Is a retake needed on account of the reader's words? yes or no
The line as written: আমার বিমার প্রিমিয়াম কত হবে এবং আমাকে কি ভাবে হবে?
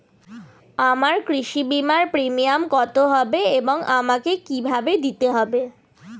yes